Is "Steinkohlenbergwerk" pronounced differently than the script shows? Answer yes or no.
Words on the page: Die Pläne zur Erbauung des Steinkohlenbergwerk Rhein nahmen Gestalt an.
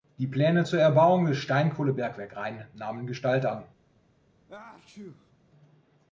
no